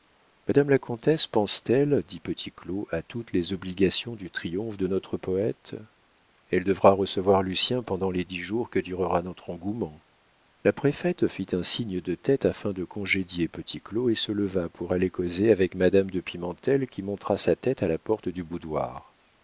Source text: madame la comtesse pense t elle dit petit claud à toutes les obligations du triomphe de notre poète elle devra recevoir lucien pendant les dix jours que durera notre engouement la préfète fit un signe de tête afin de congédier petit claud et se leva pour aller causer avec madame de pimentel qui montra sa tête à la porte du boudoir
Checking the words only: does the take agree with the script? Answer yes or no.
yes